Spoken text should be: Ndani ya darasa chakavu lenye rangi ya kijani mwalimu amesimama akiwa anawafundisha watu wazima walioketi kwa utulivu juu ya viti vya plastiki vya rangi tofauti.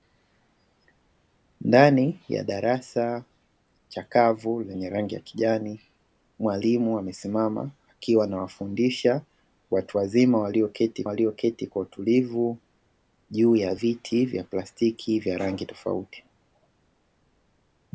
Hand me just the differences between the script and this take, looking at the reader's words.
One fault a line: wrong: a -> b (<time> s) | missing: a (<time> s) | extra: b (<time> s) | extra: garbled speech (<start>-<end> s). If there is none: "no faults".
extra: walioketi (11.0 s)